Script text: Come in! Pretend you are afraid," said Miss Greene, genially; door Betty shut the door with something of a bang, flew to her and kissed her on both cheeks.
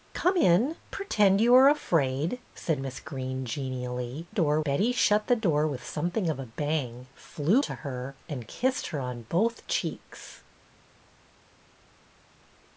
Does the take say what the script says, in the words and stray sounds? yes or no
yes